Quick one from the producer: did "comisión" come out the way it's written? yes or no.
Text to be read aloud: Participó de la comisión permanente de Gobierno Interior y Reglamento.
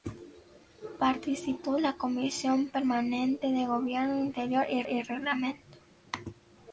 yes